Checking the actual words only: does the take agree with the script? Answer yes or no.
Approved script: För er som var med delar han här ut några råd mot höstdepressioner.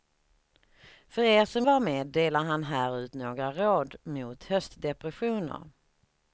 yes